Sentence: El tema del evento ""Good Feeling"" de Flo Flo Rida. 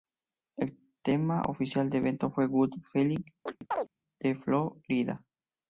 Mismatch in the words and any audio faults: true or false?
true